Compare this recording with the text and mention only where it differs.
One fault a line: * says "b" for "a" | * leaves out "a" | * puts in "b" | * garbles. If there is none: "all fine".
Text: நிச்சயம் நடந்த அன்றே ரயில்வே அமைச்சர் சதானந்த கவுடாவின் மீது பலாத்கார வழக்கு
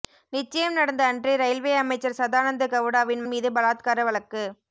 all fine